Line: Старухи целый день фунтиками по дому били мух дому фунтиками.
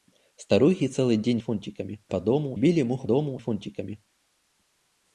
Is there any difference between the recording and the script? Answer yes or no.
no